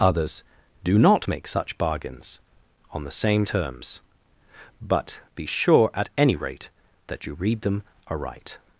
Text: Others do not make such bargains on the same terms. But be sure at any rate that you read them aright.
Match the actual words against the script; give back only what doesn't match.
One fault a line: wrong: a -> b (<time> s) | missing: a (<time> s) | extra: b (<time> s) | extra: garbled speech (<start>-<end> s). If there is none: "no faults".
no faults